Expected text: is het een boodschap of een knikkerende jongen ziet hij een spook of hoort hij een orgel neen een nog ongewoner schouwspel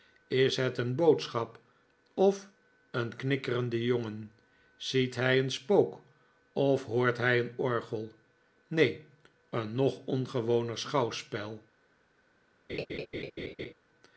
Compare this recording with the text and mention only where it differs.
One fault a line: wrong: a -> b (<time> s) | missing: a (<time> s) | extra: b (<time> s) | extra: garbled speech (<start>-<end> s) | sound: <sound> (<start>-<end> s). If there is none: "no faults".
sound: laugh (12.7-13.7 s)